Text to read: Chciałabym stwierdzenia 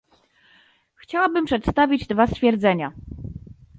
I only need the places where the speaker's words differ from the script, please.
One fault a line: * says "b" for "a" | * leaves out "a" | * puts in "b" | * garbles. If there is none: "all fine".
* puts in "przedstawić dwa"